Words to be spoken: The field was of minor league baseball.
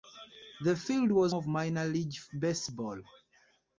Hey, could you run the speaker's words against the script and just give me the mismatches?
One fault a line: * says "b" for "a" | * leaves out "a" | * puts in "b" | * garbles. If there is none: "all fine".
all fine